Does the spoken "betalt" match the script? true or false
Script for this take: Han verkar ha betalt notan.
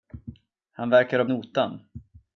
false